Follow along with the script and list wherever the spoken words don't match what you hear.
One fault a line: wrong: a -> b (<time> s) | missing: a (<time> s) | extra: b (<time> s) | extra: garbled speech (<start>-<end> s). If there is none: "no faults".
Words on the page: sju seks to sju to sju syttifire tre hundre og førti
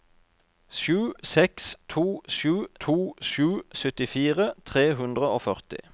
no faults